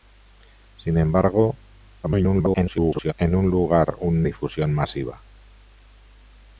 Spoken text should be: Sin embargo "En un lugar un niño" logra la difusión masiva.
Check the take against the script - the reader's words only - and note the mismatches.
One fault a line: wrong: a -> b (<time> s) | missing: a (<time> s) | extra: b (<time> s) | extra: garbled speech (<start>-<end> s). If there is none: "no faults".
extra: garbled speech (2.0-3.1 s)
missing: niño logra la (4.3 s)